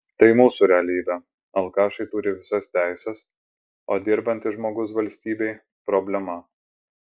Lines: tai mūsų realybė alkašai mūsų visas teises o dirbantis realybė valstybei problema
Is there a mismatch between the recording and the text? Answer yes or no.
yes